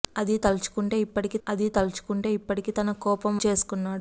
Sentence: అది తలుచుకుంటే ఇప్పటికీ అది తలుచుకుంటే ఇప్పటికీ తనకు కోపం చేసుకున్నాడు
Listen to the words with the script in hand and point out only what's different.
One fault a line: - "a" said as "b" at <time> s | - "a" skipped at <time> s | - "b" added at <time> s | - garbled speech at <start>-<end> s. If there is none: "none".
none